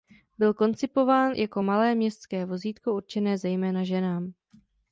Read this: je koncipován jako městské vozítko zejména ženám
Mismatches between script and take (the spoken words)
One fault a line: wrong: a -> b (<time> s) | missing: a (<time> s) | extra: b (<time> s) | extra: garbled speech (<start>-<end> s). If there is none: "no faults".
wrong: je -> byl (0.4 s)
extra: malé (1.6 s)
extra: určené (2.9 s)